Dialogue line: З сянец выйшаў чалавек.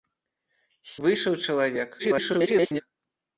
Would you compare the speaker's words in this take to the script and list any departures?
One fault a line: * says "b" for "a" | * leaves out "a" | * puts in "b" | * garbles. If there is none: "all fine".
* leaves out "сянец"
* garbles